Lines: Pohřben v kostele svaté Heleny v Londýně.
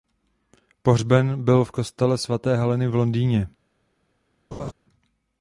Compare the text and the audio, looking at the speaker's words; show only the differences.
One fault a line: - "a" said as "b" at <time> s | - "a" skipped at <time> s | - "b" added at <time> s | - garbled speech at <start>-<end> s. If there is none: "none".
- "byl" added at 1.4 s